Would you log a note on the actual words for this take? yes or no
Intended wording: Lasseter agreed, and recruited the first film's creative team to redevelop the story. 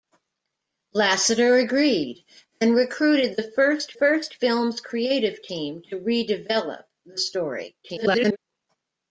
yes